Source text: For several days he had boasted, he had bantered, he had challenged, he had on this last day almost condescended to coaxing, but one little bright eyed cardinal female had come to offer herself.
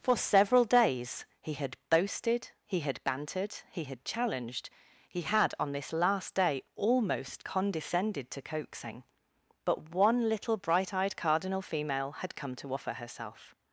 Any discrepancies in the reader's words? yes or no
no